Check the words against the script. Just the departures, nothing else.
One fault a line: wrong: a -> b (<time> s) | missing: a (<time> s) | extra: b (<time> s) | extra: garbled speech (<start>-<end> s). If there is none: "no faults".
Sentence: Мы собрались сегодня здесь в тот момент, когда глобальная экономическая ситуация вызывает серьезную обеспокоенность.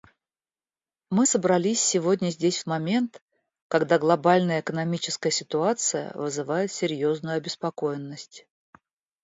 missing: тот (2.6 s)